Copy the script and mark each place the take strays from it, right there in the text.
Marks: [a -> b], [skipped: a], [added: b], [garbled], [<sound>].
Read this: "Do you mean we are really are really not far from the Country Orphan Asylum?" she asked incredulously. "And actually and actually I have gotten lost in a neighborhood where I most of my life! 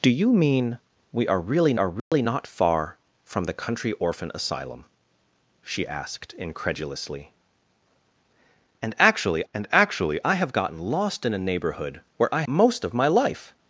"Do you mean we are really are really [dropout] not far from the Country Orphan Asylum?" she asked incredulously. "And actually and actually I have gotten lost in a neighborhood where I most of my life!